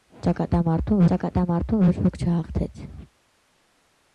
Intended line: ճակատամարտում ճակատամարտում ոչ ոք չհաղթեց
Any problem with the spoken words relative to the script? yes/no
no